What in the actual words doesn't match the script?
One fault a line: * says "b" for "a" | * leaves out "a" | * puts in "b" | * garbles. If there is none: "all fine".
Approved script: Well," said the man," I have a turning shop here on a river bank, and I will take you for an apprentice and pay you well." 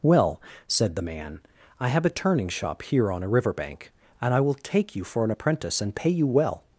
all fine